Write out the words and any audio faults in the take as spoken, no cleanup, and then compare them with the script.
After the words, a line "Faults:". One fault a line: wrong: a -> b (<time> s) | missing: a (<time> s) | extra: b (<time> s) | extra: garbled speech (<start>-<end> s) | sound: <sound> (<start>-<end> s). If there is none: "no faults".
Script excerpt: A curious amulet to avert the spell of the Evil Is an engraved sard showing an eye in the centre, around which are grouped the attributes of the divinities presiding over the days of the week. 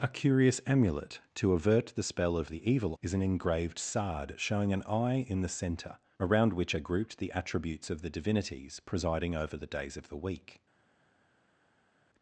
A curious amulet to avert the spell of the Evil Is an engraved sard showing an eye in the centre, around which are grouped the attributes of the divinities presiding over the days of the week.
Faults:
no faults